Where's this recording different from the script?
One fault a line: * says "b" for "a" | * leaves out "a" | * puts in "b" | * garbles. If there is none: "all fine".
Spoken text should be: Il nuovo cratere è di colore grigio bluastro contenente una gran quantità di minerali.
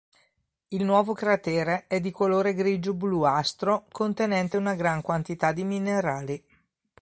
all fine